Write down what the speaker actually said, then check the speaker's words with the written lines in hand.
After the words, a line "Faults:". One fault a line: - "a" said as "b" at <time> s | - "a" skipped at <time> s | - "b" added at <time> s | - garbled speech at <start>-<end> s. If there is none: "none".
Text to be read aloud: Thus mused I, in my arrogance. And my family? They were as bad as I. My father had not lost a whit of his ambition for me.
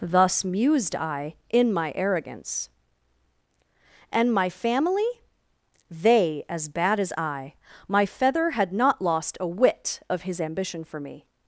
Thus mused I, in my arrogance. And my family? They as bad as I. My feather had not lost a whit of his ambition for me.
Faults:
- "were" skipped at 6.4 s
- "father" said as "feather" at 8.0 s